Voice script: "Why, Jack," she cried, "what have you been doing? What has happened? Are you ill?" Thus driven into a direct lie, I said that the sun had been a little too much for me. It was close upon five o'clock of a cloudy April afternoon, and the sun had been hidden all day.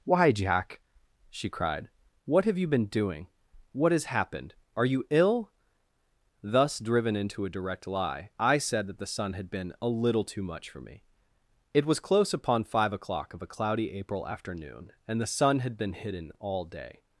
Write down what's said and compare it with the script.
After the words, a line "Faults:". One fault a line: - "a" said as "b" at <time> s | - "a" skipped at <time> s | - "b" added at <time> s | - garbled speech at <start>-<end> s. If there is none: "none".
"Why, Jack," she cried, "what have you been doing? What has happened? Are you ill?" Thus driven into a direct lie, I said that the sun had been a little too much for me. It was close upon five o'clock of a cloudy April afternoon, and the sun had been hidden all day.
Faults:
none